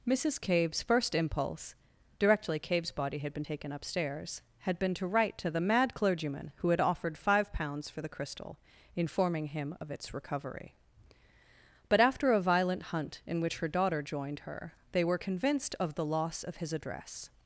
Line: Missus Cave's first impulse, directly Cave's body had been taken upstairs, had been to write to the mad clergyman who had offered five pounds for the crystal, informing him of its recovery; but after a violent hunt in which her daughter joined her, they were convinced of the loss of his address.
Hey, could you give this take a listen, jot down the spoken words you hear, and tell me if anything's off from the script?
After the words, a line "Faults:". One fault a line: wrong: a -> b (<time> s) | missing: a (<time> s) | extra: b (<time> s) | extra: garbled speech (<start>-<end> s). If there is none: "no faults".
Missus Cave's first impulse, directly Cave's body had been taken upstairs, had been to write to the mad clergyman who had offered five pounds for the crystal, informing him of its recovery; but after a violent hunt in which her daughter joined her, they were convinced of the loss of his address.
Faults:
no faults